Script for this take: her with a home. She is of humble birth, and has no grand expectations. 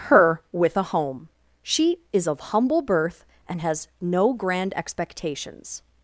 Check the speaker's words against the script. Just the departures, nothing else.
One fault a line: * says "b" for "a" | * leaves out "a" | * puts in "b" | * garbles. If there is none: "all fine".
all fine